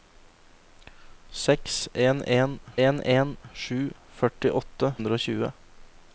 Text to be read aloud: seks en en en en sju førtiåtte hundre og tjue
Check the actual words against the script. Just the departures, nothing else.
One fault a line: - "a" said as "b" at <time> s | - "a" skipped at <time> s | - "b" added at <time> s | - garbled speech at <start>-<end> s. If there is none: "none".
none